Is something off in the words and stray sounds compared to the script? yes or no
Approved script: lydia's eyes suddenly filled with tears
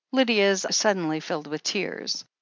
yes